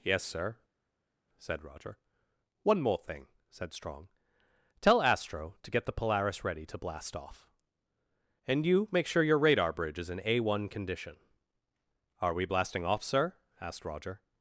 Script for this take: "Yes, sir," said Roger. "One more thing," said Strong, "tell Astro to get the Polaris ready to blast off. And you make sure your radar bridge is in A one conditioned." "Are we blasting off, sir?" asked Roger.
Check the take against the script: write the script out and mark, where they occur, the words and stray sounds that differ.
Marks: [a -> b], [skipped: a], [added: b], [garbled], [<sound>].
"Yes, sir," said Roger. "One more thing," said Strong, "tell Astro to get the Polaris ready to blast off. And you make sure your radar bridge is in A one [conditioned." -> condition] "Are we blasting off, sir?" asked Roger.